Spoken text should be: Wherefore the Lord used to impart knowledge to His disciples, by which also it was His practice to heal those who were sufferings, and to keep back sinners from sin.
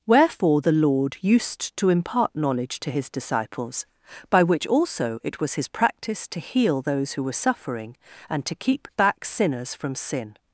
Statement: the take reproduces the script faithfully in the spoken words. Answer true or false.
false